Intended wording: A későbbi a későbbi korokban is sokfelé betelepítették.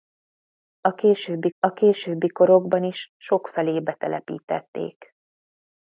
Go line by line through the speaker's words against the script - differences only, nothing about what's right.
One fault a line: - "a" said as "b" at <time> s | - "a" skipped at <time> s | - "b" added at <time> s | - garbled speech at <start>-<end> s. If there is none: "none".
none